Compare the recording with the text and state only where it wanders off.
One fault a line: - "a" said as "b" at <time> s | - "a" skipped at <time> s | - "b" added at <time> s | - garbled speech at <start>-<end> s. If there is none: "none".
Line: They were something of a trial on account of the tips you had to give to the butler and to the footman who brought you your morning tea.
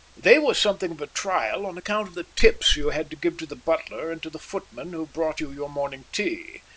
none